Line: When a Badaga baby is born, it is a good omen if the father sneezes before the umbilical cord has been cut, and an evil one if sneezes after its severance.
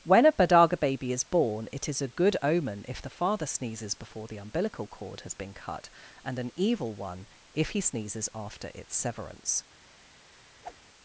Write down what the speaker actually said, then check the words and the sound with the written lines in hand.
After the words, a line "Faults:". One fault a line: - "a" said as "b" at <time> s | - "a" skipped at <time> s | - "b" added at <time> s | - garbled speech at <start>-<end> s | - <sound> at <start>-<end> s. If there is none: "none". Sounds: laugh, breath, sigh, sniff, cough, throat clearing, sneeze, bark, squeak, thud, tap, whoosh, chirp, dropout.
When a Badaga baby is born, it is a good omen if the father sneezes before the umbilical cord has been cut, and an evil one if he sneezes after its severance.
Faults:
- "he" added at 7.7 s
- whoosh at 10.6-10.8 s